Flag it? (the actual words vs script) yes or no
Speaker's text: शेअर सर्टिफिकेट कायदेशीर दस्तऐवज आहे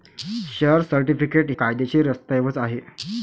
no